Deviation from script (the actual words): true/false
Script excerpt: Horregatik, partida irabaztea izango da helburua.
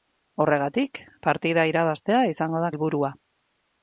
false